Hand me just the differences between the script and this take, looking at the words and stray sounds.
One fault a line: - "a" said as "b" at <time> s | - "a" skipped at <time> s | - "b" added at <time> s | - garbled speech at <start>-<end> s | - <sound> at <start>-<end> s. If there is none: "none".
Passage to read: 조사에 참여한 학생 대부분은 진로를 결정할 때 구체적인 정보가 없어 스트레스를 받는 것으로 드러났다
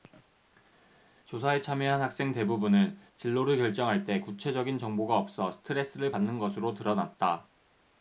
none